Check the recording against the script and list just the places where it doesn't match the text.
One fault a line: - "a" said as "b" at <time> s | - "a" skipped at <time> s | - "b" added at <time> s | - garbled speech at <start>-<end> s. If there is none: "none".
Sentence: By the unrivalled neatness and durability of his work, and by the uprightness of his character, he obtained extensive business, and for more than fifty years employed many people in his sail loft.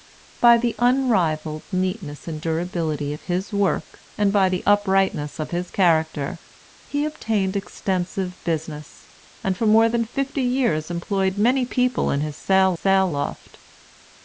- "sail" added at 12.7 s